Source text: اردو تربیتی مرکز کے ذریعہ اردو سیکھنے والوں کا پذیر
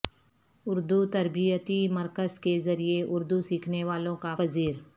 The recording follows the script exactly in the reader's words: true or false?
true